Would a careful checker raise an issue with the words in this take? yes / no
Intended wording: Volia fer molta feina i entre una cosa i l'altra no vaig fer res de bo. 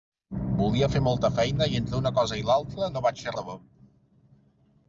yes